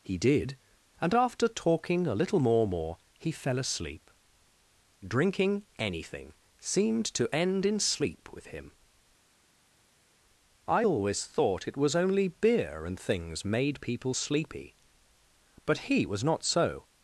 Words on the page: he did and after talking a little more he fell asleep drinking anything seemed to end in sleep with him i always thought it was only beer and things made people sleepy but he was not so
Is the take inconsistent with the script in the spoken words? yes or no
yes